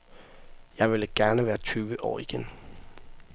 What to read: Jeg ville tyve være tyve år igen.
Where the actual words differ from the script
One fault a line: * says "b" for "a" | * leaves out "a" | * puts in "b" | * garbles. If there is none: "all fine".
* says "gerne" for "tyve"